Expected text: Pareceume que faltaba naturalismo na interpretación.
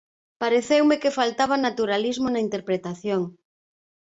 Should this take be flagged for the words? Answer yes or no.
no